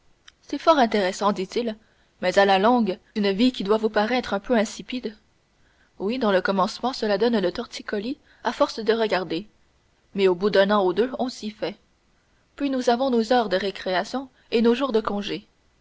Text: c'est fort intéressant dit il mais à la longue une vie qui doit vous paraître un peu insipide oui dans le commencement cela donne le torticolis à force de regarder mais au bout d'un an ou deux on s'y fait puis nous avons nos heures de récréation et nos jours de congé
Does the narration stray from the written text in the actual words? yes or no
no